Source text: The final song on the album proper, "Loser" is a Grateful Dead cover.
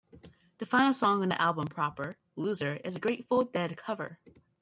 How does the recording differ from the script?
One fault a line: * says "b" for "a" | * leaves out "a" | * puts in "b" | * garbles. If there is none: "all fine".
all fine